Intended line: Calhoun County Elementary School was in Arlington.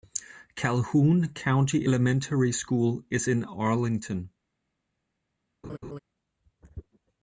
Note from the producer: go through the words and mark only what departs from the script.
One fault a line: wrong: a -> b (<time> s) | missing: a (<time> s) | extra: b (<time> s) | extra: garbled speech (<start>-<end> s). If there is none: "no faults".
wrong: was -> is (3.1 s)